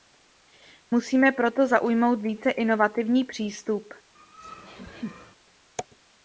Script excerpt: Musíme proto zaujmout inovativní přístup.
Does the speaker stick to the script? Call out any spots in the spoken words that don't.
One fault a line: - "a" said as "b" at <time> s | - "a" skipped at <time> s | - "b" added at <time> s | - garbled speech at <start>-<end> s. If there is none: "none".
- "více" added at 2.2 s